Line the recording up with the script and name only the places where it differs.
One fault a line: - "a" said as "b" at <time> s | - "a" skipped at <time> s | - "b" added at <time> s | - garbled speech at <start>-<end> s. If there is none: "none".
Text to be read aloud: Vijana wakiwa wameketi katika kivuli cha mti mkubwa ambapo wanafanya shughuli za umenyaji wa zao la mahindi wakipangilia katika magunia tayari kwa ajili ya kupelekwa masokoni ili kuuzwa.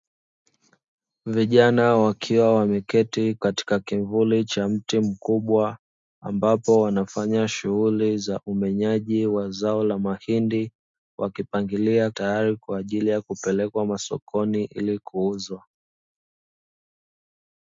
- "katika magunia" skipped at 12.1 s